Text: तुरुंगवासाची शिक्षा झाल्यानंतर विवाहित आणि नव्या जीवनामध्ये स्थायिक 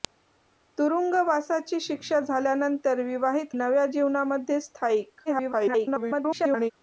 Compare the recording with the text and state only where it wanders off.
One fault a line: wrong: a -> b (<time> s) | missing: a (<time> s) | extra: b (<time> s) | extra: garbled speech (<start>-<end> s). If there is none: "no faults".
missing: आणि (3.5 s)
extra: garbled speech (5.3-6.7 s)